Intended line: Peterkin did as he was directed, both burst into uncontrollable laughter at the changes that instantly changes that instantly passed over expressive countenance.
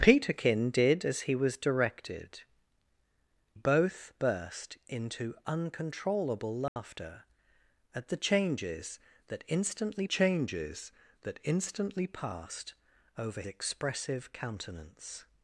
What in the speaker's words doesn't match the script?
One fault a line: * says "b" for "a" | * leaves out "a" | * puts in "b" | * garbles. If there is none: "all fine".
all fine